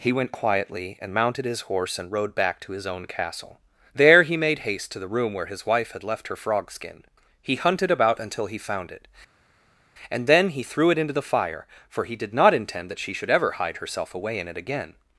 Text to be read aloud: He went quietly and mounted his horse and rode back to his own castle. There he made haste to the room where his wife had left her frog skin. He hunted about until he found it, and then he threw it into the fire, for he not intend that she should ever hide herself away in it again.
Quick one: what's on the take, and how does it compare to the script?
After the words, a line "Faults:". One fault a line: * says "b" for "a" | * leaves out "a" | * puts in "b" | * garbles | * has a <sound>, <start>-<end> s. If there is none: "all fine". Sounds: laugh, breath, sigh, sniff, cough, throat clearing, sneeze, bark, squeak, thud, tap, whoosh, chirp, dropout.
He went quietly and mounted his horse and rode back to his own castle. There he made haste to the room where his wife had left her frog skin. He hunted about until he found it, and then he threw it into the fire, for he did not intend that she should ever hide herself away in it again.
Faults:
* puts in "did"